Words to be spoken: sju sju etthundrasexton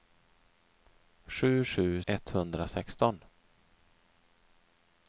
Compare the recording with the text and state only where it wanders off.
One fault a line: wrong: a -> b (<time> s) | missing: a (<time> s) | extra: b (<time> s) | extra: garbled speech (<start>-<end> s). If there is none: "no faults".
no faults